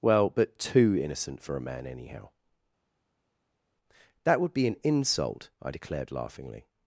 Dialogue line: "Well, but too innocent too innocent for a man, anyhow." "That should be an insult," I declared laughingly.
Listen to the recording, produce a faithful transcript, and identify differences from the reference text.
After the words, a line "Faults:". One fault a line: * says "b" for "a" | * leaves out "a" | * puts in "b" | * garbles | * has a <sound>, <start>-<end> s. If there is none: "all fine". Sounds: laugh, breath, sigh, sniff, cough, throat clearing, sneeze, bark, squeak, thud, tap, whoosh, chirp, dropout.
"Well, but too innocent for a man, anyhow." "That would be an insult," I declared laughingly.
Faults:
* leaves out "too innocent"
* says "would" for "should"